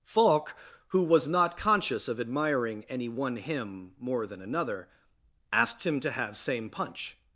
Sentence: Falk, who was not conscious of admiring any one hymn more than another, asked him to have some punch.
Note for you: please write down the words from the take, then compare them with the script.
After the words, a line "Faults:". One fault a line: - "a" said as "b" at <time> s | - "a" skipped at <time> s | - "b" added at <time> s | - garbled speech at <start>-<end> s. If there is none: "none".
Falk, who was not conscious of admiring any one hymn more than another, asked him to have same punch.
Faults:
- "some" said as "same" at 6.3 s